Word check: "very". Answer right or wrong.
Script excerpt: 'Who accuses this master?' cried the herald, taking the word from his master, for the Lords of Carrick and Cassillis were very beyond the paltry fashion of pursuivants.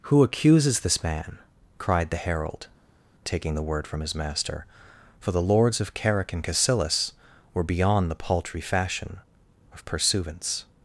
wrong